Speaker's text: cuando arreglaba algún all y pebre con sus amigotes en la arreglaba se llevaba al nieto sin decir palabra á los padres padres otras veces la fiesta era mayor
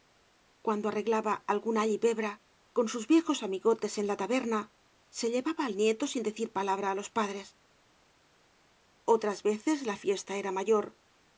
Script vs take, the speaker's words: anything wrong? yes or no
yes